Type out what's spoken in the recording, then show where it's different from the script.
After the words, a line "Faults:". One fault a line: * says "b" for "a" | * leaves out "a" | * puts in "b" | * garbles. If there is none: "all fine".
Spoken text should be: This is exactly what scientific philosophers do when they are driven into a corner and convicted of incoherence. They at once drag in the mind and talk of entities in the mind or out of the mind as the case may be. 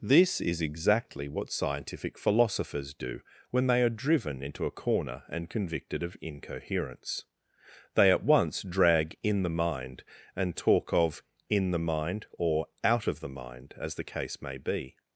This is exactly what scientific philosophers do when they are driven into a corner and convicted of incoherence. They at once drag in the mind and talk of in the mind or out of the mind as the case may be.
Faults:
* leaves out "entities"